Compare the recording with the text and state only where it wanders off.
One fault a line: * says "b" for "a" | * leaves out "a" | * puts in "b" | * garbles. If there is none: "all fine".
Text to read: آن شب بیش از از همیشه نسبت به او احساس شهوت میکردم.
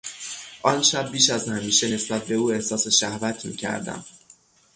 * leaves out "از"